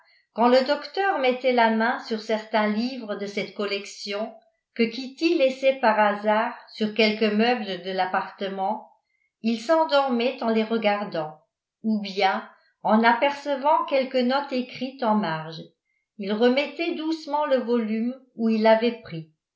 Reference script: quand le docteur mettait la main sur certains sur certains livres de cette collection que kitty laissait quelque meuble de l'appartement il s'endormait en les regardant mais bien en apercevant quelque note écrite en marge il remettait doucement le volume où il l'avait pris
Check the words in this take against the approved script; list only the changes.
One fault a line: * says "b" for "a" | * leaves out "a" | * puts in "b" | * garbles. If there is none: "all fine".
* leaves out "sur certains"
* puts in "par hasard sur"
* says "ou" for "mais"